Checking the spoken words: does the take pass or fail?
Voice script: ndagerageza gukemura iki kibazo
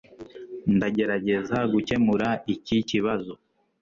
pass